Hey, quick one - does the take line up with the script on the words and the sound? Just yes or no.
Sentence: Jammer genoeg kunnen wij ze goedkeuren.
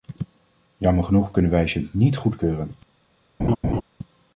no